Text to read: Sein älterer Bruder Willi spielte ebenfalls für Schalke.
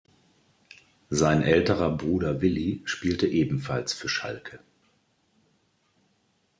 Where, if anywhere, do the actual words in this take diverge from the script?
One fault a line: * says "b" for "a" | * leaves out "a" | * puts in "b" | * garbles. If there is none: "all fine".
all fine